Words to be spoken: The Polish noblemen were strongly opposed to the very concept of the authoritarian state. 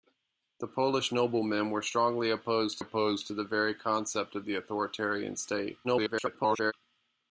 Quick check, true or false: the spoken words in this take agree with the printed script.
false